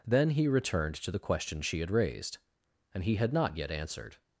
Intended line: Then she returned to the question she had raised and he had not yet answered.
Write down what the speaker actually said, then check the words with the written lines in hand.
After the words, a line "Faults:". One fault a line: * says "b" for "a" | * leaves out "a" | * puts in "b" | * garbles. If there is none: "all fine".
Then he returned to the question she had raised and he had not yet answered.
Faults:
* says "he" for "she"